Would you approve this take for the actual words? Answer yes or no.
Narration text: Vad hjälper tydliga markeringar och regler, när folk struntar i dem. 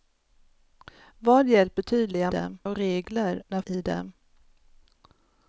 no